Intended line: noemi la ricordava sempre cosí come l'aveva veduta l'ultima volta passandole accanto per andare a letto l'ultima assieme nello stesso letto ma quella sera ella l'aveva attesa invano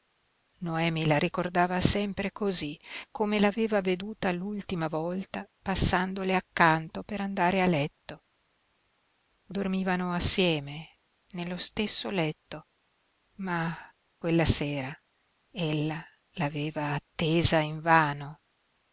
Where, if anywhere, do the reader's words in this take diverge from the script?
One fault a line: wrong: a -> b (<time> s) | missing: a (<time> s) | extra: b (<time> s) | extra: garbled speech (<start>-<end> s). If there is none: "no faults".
wrong: l'ultima -> dormivano (9.4 s)